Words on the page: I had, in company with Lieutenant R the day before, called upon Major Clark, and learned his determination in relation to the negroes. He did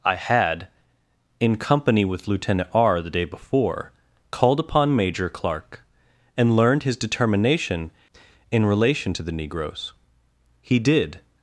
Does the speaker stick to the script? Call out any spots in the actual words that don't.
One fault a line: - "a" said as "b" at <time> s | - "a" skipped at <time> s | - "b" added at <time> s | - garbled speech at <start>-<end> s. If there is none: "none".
none